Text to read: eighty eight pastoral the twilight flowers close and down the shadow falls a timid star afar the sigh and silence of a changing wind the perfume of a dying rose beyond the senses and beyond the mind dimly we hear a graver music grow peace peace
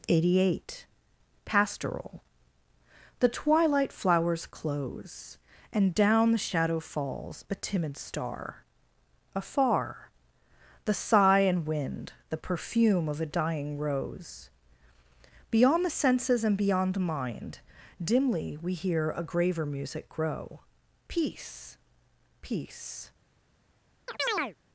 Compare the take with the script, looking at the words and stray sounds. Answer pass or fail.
fail